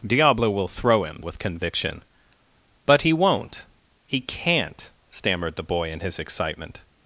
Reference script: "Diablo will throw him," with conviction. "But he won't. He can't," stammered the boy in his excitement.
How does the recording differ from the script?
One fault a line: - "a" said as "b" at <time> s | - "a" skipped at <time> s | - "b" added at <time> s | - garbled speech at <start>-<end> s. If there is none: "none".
none